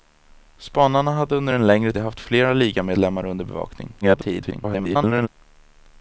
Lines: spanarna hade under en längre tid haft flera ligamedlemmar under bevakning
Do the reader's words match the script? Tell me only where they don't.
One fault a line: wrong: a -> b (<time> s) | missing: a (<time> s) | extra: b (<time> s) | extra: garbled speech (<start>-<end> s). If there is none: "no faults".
missing: tid (1.9 s)
extra: garbled speech (4.0-5.3 s)